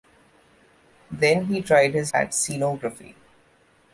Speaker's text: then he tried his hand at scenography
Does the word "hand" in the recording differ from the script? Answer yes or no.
yes